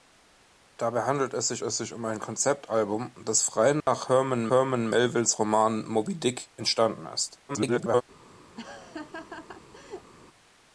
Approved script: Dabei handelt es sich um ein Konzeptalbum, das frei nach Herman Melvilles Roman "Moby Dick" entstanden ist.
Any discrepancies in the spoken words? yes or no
yes